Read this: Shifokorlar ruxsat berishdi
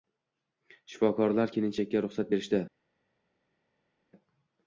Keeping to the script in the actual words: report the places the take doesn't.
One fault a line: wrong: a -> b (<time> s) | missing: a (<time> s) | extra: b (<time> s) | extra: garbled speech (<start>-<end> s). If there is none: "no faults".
extra: kelinchakka (1.6 s)